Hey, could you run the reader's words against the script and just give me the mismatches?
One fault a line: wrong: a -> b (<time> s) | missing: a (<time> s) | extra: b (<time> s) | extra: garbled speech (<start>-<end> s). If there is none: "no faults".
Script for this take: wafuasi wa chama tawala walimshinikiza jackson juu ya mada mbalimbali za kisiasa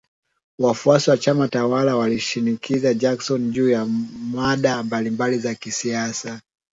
no faults